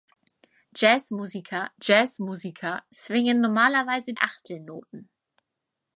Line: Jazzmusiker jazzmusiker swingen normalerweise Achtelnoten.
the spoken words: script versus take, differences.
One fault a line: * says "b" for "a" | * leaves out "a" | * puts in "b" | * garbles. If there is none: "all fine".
all fine